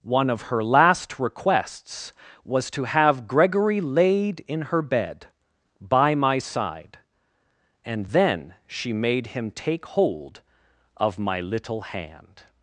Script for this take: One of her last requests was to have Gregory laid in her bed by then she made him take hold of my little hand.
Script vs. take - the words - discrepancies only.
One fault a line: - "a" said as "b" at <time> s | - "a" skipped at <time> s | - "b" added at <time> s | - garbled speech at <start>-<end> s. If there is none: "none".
- "my side and" added at 6.2 s